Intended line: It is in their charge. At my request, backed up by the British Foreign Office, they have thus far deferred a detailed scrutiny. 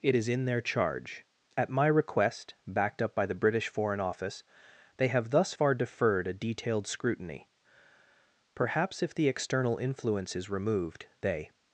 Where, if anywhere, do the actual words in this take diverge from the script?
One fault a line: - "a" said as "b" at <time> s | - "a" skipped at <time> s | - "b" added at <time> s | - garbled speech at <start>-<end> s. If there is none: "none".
- "Perhaps if the external influence is removed they" added at 8.5 s